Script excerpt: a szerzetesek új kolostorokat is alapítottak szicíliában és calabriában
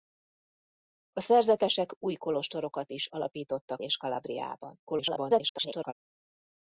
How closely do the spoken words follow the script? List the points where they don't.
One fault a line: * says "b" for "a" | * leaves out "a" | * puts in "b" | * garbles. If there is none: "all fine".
* leaves out "szicíliában"
* garbles